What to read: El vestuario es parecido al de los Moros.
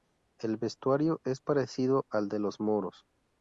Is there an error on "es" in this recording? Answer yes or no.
no